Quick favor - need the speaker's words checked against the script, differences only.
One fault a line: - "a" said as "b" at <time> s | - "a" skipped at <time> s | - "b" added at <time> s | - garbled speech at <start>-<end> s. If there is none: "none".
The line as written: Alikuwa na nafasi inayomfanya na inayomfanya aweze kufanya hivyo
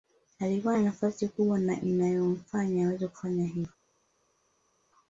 - "inayomfanya" said as "kubwa" at 1.3 s